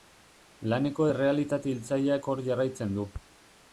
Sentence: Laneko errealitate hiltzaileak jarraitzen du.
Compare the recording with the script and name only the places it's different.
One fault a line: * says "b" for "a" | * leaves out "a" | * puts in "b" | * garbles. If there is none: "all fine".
* puts in "hor"